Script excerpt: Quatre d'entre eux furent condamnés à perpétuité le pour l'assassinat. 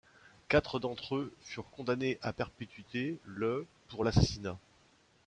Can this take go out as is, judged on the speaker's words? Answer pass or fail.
pass